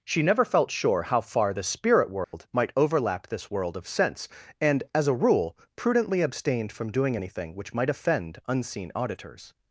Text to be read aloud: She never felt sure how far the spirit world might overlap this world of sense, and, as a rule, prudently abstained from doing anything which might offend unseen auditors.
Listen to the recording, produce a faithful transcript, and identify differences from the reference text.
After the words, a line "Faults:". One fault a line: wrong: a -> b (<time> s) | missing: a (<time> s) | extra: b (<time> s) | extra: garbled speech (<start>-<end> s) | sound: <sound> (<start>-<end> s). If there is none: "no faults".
She never felt sure how far the spirit world might overlap this world of sense, and, as a rule, prudently abstained from doing anything which might offend unseen auditors.
Faults:
sound: dropout (2.2-2.3 s)